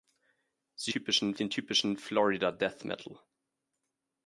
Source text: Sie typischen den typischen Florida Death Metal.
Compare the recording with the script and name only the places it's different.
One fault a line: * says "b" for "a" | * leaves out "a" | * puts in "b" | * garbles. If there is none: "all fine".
all fine